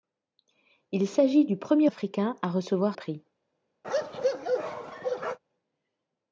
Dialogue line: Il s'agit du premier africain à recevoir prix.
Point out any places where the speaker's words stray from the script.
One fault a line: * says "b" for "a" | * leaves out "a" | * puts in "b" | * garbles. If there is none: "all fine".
all fine